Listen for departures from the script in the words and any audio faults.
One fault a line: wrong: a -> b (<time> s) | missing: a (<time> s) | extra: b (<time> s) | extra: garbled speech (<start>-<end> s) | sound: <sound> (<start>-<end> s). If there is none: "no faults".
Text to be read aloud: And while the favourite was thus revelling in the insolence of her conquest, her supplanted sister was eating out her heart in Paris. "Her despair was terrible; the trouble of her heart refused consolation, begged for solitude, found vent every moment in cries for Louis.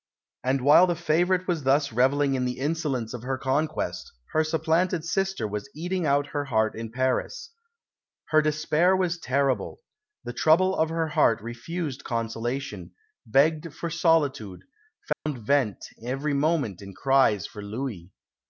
sound: dropout (15.1-15.3 s)